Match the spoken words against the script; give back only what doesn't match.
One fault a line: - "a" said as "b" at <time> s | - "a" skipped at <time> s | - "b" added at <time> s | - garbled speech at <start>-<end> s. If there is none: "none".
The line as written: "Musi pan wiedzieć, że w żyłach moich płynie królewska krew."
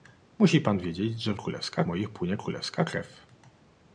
- "żyłach" said as "królewska" at 1.3 s